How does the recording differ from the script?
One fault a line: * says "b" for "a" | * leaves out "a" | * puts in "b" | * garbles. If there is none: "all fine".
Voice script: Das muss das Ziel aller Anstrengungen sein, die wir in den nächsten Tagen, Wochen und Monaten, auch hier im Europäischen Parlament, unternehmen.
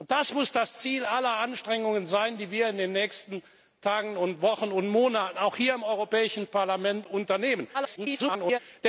* garbles